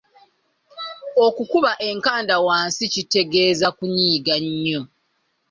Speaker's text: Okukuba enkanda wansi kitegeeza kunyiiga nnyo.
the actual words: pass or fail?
pass